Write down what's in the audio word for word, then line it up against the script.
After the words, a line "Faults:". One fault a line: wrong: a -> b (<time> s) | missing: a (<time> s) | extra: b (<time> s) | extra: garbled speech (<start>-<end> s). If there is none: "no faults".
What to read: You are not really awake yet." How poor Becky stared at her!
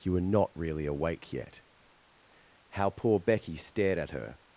You were not really awake yet." How poor Becky stared at her!
Faults:
wrong: are -> were (0.1 s)